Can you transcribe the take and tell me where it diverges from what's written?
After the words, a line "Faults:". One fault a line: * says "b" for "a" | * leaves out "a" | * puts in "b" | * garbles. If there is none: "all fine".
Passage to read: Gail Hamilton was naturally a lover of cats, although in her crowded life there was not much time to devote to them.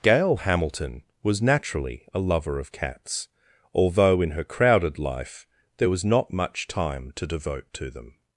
Gail Hamilton was naturally a lover of cats, although in her crowded life there was not much time to devote to them.
Faults:
all fine